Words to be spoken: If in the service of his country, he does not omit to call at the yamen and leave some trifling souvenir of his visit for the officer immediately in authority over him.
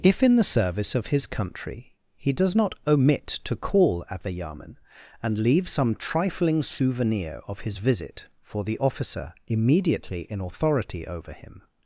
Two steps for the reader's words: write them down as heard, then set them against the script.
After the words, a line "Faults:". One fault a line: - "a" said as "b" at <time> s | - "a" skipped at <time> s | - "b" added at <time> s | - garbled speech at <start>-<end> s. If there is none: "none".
If in the service of his country, he does not omit to call at the yamen and leave some trifling souvenir of his visit for the officer immediately in authority over him.
Faults:
none